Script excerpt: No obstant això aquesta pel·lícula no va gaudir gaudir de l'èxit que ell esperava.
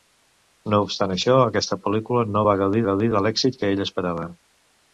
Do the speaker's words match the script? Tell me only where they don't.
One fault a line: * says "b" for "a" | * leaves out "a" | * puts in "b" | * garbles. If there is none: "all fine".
all fine